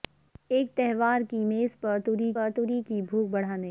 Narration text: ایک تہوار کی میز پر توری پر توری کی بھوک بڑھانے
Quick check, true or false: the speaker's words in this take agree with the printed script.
true